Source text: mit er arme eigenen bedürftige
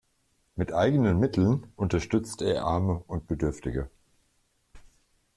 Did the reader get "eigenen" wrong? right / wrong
wrong